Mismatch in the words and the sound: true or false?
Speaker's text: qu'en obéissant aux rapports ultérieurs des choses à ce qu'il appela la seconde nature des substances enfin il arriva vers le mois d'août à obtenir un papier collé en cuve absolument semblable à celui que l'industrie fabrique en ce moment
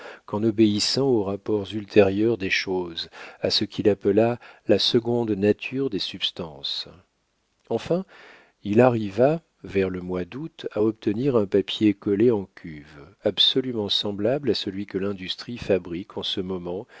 false